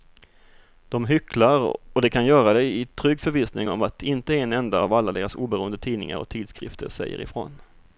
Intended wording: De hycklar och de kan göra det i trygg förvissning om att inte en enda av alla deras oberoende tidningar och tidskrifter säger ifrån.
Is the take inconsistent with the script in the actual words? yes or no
no